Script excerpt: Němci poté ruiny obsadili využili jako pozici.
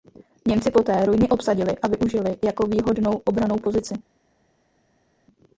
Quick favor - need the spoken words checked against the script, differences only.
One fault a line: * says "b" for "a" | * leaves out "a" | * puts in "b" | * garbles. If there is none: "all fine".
* puts in "a"
* puts in "výhodnou obrannou"